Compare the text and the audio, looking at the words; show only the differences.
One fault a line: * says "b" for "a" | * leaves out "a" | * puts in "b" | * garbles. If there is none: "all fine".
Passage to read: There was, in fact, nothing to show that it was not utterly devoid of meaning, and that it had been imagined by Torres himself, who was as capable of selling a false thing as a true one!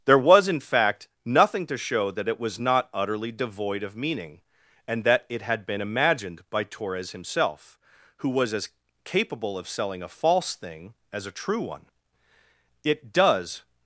* puts in "It does"